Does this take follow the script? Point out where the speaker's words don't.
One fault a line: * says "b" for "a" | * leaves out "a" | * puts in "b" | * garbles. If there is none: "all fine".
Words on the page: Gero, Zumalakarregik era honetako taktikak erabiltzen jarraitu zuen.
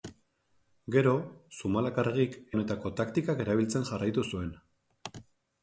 * leaves out "era"